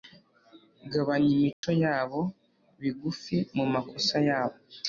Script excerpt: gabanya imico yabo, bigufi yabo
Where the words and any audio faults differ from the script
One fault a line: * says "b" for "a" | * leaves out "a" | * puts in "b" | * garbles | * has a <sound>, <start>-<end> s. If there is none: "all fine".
* has a dropout, 1.5-1.6 s
* puts in "mumakosa"